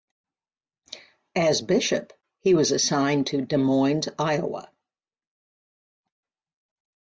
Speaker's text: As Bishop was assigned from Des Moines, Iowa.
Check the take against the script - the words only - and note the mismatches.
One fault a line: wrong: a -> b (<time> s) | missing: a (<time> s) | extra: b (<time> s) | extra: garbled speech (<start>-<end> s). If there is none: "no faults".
extra: he (2.4 s)
wrong: from -> to (3.3 s)